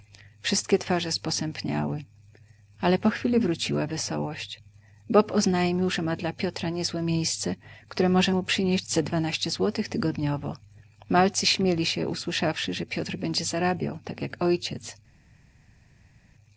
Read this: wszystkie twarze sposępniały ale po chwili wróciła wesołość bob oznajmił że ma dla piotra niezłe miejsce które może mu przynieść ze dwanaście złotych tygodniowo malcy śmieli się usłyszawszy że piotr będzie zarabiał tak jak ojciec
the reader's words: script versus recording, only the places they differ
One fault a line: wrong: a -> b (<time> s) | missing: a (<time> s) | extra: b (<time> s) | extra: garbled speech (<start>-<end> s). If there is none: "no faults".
no faults